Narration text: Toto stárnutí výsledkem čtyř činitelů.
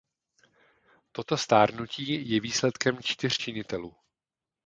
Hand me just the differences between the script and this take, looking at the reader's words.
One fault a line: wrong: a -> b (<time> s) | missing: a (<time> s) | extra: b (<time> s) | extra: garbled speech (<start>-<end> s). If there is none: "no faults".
extra: je (2.3 s)